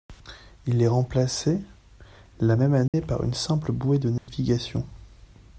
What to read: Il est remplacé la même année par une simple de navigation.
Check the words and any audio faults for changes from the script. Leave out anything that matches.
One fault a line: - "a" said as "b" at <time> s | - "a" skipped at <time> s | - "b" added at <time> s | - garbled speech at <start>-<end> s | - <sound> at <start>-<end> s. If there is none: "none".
- dropout at 2.9-2.9 s
- "bouée" added at 3.7 s
- dropout at 4.2-4.3 s